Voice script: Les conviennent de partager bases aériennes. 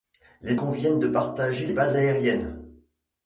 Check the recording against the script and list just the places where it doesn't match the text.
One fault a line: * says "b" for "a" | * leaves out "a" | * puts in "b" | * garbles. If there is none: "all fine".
all fine